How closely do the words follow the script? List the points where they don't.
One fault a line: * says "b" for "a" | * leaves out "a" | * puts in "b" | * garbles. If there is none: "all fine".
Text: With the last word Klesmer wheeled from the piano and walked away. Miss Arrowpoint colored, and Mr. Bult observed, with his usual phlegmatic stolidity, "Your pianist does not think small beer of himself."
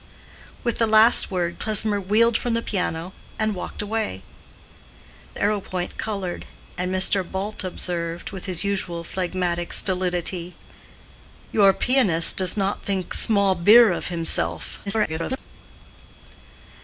* leaves out "Miss"
* garbles